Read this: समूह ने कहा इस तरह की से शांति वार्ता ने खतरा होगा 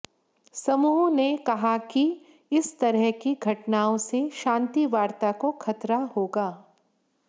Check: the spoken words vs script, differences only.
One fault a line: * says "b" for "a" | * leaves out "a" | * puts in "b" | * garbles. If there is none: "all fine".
* puts in "कि"
* puts in "घटनाओं"
* says "को" for "ने"